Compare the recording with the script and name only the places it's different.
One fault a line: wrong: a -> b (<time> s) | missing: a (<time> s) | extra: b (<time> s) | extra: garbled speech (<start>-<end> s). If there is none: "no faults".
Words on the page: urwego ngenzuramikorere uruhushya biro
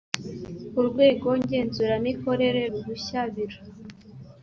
no faults